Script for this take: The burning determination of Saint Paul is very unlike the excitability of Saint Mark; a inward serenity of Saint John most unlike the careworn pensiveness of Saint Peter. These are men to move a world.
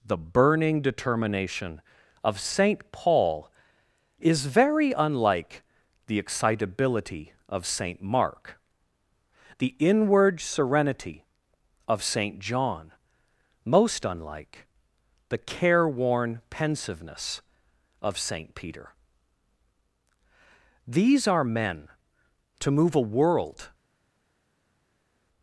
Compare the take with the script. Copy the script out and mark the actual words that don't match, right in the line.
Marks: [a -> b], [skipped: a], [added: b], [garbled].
The burning determination of Saint Paul is very unlike the excitability of Saint Mark; [a -> the] inward serenity of Saint John most unlike the careworn pensiveness of Saint Peter. These are men to move a world.